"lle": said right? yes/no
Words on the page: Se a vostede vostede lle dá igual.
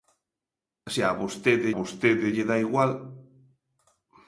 yes